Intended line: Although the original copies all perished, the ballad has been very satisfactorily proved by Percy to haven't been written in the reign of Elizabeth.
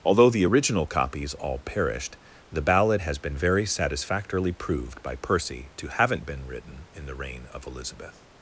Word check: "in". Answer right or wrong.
right